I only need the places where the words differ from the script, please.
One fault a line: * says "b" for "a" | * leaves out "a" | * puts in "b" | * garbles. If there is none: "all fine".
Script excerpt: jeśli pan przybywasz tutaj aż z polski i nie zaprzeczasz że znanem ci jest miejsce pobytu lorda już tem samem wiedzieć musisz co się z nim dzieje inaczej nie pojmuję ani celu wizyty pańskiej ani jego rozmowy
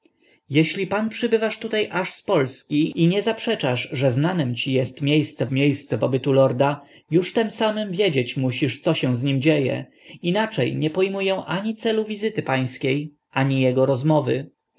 * puts in "miejsce"